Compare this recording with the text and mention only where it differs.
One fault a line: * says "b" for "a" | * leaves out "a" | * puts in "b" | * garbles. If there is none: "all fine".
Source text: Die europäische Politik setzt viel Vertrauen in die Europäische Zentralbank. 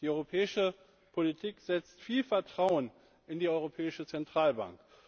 all fine